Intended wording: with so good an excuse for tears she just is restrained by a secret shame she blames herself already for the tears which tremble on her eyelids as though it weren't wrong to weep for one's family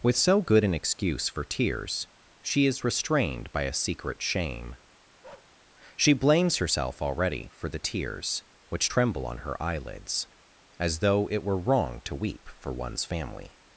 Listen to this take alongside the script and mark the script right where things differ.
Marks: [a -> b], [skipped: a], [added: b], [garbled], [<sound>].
with so good an excuse for tears she [skipped: just] is restrained by a secret shame [bark] she blames herself already for the tears which tremble on her eyelids as though it [weren't -> were] wrong to weep for one's family